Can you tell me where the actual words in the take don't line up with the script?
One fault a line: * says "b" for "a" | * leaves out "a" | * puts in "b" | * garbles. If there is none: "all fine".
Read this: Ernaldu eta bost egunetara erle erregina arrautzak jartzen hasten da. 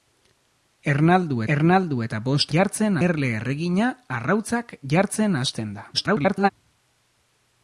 * puts in "ernaldu"
* says "jartzen" for "egunetara"
* garbles